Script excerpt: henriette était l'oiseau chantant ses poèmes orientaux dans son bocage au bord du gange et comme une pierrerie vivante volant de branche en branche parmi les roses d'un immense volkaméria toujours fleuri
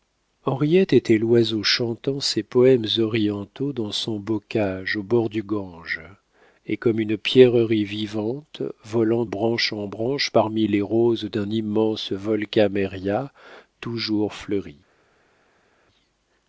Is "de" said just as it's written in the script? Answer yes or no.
no